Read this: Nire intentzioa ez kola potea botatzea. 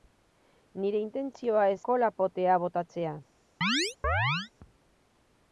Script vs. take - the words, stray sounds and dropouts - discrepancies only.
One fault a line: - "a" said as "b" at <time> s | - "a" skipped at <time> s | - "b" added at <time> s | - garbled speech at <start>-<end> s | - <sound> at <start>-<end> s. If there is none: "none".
- chirp at 3.6-4.5 s